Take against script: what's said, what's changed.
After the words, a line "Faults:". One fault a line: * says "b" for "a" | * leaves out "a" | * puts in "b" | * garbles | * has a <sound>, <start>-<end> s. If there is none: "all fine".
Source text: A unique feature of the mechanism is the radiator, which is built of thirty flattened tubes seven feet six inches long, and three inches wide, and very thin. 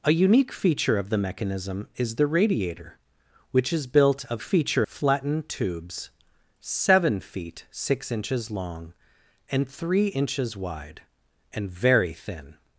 A unique feature of the mechanism is the radiator, which is built of feature flattened tubes seven feet six inches long, and three inches wide, and very thin.
Faults:
* says "feature" for "thirty"